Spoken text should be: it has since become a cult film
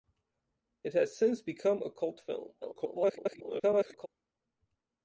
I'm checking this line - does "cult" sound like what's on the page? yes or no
yes